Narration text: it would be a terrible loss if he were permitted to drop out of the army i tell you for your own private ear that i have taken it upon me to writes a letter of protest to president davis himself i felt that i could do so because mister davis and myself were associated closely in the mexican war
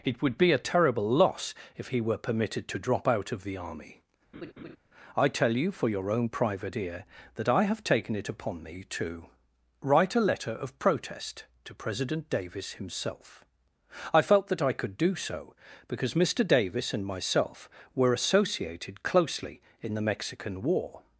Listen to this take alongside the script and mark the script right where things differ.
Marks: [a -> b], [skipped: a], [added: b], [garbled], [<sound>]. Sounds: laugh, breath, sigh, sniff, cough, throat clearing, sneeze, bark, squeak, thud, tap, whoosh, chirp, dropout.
it would be a terrible loss if he were permitted to drop out of the army [laugh] i tell you for your own private ear that i have taken it upon me to [writes -> write] a letter of protest to president davis himself i felt that i could do so because mister davis and myself were associated closely in the mexican war